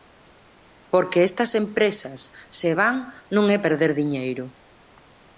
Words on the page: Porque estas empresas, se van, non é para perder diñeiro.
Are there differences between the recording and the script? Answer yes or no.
yes